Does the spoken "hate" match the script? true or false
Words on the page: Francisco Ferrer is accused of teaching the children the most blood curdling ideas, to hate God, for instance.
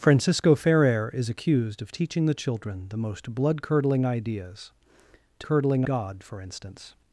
false